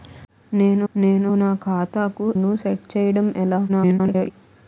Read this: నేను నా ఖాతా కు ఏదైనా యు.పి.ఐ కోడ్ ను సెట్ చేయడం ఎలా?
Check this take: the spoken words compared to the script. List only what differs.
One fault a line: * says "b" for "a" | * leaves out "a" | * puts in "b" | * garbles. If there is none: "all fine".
* puts in "నేను"
* leaves out "ఏదైనా యు.పి.ఐ కోడ్"
* garbles